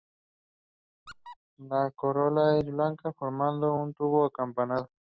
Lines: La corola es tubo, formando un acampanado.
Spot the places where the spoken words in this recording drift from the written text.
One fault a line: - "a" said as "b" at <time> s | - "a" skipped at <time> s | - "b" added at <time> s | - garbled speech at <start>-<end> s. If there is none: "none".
- "tubo" said as "blanca" at 2.7 s
- "tubo" added at 3.9 s